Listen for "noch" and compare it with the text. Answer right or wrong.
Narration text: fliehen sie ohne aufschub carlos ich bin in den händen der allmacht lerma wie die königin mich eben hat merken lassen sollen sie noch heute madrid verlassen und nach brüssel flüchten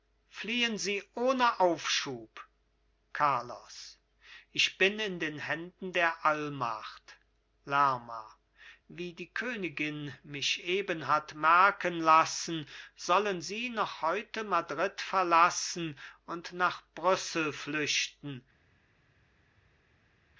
right